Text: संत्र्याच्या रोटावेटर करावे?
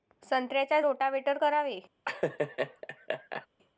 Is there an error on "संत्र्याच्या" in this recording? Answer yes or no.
no